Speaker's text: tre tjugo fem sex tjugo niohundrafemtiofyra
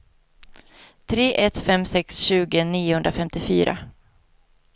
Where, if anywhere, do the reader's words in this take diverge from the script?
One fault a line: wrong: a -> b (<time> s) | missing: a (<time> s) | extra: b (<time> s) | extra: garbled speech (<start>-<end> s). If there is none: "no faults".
wrong: tjugo -> ett (1.4 s)